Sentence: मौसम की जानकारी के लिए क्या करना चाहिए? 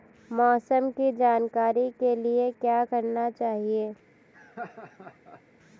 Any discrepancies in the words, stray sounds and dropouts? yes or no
yes